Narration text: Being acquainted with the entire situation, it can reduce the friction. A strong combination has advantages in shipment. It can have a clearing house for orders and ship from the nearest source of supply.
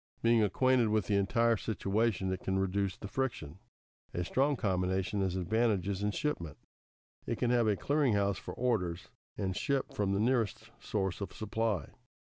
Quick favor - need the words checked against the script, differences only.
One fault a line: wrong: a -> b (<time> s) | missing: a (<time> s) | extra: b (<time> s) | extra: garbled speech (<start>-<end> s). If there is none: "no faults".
no faults